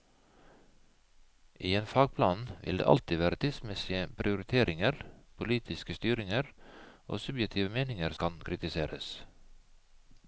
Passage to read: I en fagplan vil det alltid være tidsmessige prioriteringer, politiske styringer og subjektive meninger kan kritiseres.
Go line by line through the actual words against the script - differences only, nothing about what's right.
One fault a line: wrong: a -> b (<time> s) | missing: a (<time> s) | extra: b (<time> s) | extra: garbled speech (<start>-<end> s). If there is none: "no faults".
no faults